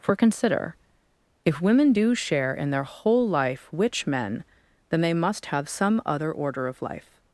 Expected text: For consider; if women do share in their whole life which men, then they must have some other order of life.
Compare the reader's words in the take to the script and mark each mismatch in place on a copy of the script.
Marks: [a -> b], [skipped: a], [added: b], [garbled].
For consider; if women do share in their whole life which men, then they must have some other order of life.